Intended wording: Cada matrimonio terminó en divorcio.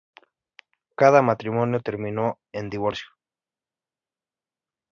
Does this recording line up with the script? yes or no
yes